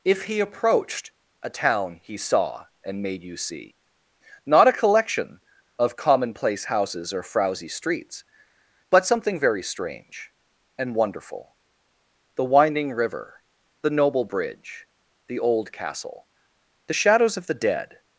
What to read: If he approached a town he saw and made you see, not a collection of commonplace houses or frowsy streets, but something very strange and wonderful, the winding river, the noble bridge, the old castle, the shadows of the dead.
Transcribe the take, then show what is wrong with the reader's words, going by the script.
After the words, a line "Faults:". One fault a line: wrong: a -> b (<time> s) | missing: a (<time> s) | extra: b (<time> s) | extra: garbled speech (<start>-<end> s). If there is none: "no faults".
If he approached a town he saw and made you see, not a collection of commonplace houses or frowsy streets, but something very strange and wonderful, the winding river, the noble bridge, the old castle, the shadows of the dead.
Faults:
no faults